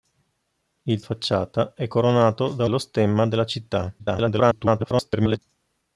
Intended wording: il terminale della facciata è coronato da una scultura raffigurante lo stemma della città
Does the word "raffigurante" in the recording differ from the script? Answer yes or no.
yes